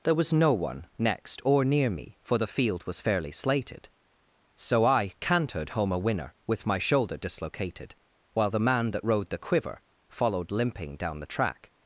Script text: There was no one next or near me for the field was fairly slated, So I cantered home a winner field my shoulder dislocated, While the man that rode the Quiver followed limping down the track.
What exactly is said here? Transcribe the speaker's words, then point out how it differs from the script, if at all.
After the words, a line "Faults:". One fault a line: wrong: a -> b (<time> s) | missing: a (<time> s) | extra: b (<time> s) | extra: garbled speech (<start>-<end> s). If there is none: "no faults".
There was no one next or near me for the field was fairly slated, So I cantered home a winner with my shoulder dislocated, While the man that rode the Quiver followed limping down the track.
Faults:
wrong: field -> with (6.5 s)